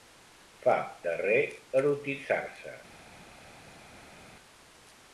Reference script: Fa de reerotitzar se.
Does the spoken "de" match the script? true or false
true